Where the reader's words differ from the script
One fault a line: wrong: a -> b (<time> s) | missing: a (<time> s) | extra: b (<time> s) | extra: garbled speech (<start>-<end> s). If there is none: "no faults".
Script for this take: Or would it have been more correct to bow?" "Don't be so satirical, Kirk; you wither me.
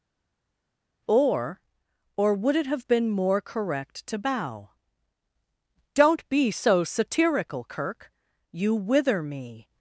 extra: or (2.2 s)